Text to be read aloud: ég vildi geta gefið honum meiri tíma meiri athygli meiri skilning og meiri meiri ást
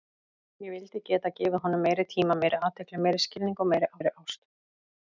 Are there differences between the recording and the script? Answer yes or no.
no